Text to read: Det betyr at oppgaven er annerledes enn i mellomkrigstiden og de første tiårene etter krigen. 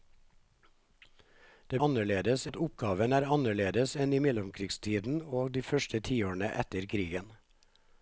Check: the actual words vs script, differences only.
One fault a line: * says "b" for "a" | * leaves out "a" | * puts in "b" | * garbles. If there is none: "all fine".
* says "annerledes" for "betyr"